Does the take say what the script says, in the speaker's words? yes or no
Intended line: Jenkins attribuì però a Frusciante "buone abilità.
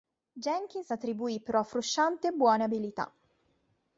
yes